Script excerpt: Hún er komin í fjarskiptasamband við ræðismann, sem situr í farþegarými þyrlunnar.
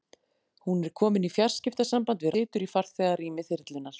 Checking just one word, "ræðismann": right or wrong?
wrong